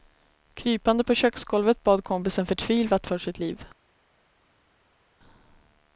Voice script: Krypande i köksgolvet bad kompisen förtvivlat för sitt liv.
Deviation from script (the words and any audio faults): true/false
true